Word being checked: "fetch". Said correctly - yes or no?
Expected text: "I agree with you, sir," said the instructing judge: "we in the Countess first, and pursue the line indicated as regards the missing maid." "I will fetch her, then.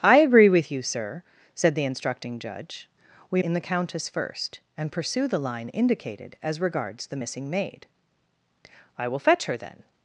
yes